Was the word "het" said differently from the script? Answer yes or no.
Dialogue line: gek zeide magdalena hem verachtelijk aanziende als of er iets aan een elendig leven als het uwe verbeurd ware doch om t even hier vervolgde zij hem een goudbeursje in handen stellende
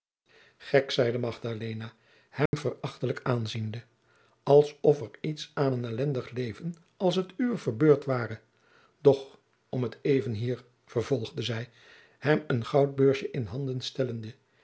no